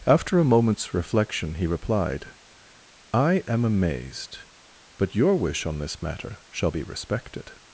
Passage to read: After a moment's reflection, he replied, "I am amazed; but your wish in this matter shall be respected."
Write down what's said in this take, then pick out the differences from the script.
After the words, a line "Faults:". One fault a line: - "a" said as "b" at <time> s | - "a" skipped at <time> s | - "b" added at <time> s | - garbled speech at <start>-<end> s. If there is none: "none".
After a moment's reflection, he replied, "I am amazed; but your wish on this matter shall be respected."
Faults:
- "in" said as "on" at 5.7 s